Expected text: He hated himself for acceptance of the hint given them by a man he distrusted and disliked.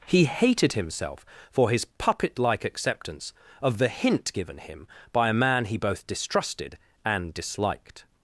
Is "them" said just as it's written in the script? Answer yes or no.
no